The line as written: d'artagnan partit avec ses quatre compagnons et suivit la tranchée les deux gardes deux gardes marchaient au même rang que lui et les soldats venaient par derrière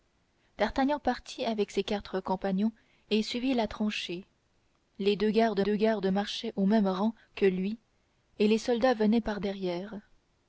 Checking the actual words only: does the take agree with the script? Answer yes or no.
yes